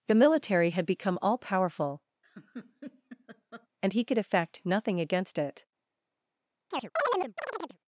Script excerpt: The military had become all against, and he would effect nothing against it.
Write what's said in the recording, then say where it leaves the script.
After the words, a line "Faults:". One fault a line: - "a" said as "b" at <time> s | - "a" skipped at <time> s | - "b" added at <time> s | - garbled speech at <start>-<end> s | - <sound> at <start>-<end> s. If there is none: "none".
The military had become all powerful, and he could effect nothing against it.
Faults:
- "against" said as "powerful" at 1.4 s
- laugh at 2.2-3.7 s
- "would" said as "could" at 4.0 s
- chirp at 6.7-7.8 s